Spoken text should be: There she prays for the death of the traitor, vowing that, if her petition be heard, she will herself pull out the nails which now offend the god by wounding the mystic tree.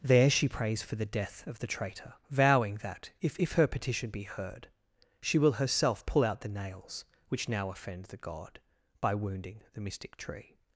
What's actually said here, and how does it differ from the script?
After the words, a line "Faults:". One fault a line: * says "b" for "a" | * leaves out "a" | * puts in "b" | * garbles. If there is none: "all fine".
There she prays for the death of the traitor, vowing that, if if her petition be heard, she will herself pull out the nails which now offend the god by wounding the mystic tree.
Faults:
* puts in "if"